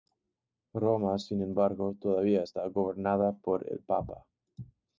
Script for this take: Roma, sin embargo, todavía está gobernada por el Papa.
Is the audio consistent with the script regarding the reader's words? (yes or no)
yes